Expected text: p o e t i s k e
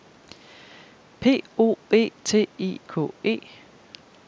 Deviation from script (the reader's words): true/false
true